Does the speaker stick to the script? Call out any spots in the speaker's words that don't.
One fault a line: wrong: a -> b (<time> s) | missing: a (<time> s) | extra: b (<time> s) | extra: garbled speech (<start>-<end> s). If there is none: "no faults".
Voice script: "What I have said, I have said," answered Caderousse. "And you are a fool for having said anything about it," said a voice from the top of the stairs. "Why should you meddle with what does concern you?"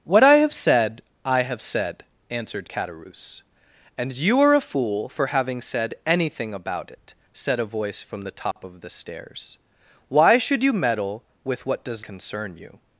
no faults